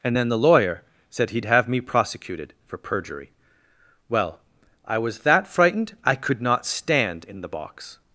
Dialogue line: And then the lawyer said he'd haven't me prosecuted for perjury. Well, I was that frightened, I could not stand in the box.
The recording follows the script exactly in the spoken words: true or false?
false